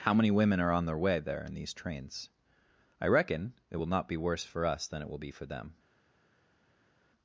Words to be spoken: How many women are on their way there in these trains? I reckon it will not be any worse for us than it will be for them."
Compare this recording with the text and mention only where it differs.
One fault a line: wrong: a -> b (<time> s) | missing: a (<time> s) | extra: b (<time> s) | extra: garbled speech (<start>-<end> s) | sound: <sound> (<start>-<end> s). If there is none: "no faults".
missing: any (4.2 s)